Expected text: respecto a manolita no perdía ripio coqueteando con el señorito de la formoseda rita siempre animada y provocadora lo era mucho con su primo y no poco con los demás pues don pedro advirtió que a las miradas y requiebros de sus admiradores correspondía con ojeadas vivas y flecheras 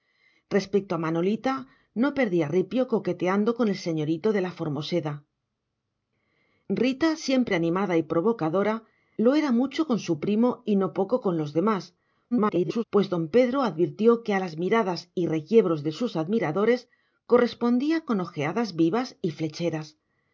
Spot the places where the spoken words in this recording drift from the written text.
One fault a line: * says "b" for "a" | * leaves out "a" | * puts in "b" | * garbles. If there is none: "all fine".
* garbles